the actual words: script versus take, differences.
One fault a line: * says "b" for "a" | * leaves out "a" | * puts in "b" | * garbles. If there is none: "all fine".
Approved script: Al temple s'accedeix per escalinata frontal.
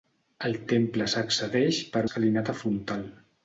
all fine